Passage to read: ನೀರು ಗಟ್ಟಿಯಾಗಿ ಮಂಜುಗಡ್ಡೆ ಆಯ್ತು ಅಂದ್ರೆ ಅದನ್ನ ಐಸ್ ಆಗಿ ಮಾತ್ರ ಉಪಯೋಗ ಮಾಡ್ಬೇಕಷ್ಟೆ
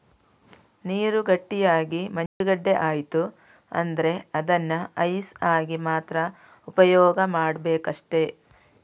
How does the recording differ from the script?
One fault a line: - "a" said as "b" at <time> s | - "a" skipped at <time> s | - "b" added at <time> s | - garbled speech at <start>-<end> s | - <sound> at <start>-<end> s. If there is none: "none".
- dropout at 2.3-2.4 s